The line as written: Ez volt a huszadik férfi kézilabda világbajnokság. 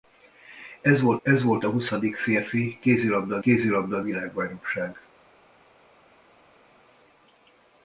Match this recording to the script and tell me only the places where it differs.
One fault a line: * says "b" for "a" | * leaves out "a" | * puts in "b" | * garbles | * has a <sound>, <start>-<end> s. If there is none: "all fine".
* puts in "ez volt"
* puts in "kézilabda"